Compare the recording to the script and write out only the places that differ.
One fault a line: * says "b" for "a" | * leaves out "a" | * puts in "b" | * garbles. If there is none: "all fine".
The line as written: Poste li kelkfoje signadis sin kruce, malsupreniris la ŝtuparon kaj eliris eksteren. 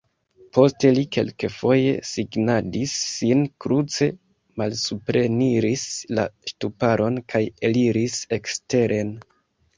all fine